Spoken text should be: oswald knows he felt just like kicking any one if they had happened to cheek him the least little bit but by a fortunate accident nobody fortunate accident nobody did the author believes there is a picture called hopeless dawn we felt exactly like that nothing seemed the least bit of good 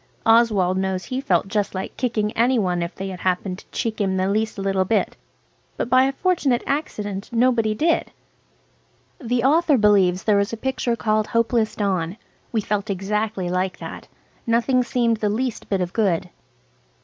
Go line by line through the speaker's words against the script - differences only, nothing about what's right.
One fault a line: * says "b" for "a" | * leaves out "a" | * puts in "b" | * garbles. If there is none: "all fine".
* leaves out "fortunate accident nobody"